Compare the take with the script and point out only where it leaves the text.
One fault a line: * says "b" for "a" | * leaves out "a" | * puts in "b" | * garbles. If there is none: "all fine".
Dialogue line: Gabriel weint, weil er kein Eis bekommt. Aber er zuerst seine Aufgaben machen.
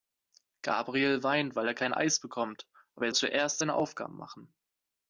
all fine